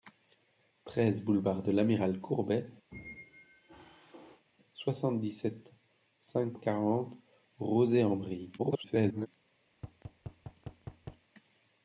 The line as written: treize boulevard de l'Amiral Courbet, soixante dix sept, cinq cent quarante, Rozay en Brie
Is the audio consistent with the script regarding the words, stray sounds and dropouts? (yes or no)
no